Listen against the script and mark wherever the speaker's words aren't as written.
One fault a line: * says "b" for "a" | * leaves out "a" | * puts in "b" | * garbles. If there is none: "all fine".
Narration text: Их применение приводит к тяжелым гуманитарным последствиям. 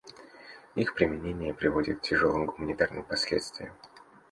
all fine